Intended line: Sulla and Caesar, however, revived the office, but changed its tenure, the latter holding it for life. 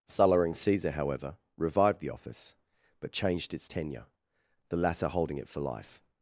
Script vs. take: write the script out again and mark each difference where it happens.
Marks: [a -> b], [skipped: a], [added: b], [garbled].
Sulla and Caesar, however, revived the office, but changed its tenure, the latter holding it for life.